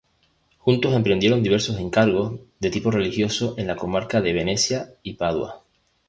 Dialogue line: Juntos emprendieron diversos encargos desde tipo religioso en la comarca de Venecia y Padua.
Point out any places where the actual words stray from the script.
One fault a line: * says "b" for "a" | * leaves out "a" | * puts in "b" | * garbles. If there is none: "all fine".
* says "de" for "desde"